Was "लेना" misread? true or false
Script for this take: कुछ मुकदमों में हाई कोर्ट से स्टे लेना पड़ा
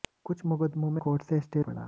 true